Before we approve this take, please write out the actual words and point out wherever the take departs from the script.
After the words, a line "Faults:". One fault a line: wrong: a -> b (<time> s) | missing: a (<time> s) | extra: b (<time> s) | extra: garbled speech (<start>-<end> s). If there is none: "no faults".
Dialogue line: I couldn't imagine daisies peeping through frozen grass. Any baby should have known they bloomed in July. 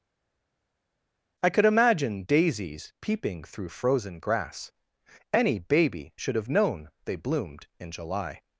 I could imagine daisies peeping through frozen grass. Any baby should have known they bloomed in July.
Faults:
wrong: couldn't -> could (1.5 s)